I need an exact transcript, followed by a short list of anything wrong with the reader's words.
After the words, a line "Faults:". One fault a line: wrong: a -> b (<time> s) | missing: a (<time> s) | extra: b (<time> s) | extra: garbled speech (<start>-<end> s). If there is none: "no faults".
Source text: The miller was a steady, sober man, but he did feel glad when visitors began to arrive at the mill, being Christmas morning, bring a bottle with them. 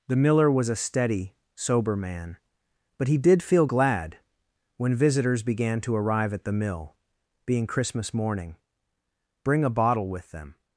The miller was a steady, sober man, but he did feel glad when visitors began to arrive at the mill, being Christmas morning, bring a bottle with them.
Faults:
no faults